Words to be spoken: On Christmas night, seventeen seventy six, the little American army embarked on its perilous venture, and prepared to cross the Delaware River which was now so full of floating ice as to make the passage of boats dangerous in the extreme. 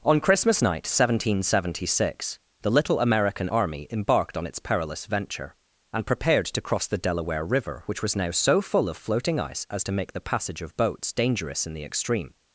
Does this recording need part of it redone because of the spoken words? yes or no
no